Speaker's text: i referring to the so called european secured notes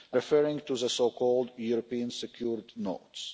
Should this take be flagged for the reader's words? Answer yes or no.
no